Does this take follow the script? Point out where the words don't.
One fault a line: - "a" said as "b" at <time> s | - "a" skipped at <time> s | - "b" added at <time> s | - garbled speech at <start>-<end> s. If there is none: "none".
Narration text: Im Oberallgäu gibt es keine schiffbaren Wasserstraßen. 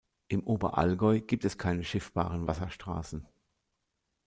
none